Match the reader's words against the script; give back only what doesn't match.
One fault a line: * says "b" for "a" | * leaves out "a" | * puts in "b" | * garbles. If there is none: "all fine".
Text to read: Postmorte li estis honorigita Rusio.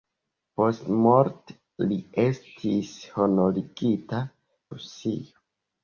all fine